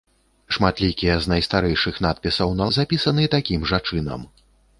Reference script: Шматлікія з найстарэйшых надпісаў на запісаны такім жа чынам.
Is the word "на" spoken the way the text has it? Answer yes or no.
yes